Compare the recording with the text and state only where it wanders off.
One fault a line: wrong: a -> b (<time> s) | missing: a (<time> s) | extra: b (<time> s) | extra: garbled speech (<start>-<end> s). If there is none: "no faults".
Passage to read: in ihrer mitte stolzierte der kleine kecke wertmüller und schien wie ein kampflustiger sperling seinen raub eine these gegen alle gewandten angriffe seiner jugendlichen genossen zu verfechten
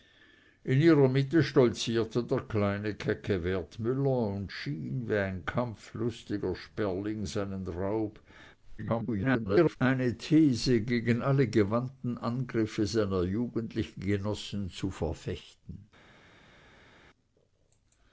extra: garbled speech (8.8-9.8 s)